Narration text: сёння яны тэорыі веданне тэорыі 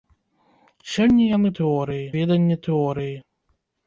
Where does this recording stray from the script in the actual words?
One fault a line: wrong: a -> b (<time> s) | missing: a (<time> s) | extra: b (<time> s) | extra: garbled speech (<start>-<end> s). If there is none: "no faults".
no faults